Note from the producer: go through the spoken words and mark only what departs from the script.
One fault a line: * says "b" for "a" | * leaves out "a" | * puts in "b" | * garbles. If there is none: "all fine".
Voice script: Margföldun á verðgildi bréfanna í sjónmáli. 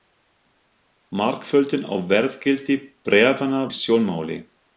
all fine